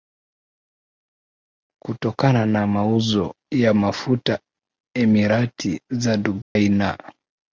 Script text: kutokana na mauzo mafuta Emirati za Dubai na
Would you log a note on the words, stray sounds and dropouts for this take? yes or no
yes